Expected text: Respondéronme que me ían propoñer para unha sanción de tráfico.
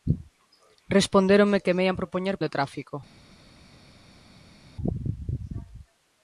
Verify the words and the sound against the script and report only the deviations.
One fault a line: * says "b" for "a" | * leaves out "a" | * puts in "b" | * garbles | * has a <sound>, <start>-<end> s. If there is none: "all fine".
* leaves out "para unha sanción"